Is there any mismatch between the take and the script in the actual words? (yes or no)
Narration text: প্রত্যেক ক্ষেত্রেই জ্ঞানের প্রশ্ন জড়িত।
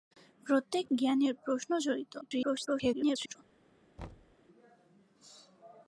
yes